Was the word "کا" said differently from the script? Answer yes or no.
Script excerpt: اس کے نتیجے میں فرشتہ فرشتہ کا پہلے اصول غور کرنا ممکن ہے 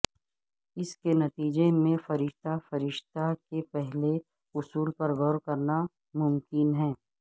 yes